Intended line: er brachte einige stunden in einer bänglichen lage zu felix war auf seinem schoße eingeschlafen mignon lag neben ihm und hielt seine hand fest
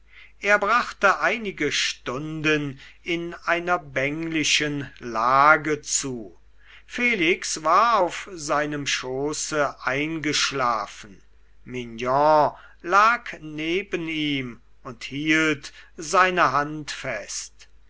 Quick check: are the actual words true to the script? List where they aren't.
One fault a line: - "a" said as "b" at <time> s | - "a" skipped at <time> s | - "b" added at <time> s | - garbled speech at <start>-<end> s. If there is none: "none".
none